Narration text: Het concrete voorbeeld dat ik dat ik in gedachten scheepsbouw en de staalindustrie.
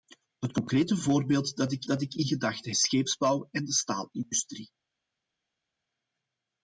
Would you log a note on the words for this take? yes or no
no